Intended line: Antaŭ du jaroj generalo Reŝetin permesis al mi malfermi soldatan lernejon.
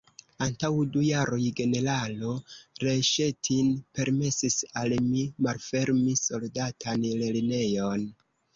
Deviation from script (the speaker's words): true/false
false